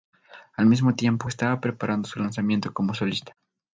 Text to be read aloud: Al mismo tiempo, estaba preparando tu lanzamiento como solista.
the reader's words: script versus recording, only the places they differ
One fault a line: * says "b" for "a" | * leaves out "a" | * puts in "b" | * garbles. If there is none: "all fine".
* says "su" for "tu"